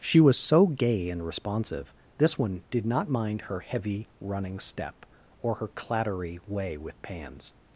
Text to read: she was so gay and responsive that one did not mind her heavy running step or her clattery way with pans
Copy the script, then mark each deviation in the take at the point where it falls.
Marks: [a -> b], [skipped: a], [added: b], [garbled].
she was so gay and responsive [that -> this] one did not mind her heavy running step or her clattery way with pans